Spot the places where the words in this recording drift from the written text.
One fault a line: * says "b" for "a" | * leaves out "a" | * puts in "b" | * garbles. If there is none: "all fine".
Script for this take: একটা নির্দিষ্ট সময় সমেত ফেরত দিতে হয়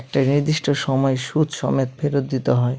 * puts in "সুদ"